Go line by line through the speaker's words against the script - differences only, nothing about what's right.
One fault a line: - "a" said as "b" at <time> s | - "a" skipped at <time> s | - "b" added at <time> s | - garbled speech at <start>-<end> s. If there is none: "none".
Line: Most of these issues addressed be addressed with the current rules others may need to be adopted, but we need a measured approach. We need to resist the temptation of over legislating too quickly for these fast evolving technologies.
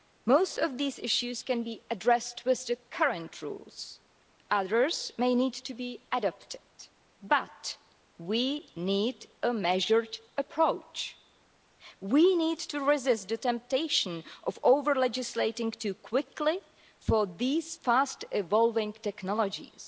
- "addressed" said as "can" at 1.4 s